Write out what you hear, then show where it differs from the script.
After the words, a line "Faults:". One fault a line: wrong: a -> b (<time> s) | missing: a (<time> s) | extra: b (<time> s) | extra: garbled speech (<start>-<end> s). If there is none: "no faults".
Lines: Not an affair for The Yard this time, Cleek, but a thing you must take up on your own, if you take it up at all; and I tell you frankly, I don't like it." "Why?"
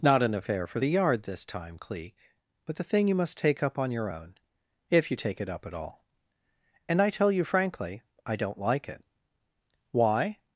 Not an affair for The Yard this time, Cleek, but the thing you must take up on your own, if you take it up at all; and I tell you frankly, I don't like it." "Why?"
Faults:
wrong: a -> the (2.8 s)